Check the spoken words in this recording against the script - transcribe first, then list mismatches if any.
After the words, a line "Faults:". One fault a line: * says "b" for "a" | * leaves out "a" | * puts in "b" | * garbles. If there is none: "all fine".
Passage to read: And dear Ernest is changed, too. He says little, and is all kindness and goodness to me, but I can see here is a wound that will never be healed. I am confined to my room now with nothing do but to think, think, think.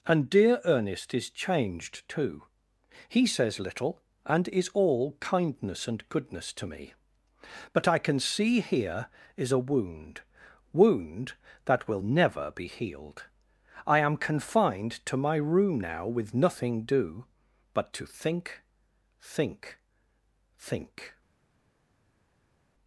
And dear Ernest is changed, too. He says little, and is all kindness and goodness to me, but I can see here is a wound wound that will never be healed. I am confined to my room now with nothing do but to think, think, think.
Faults:
* puts in "wound"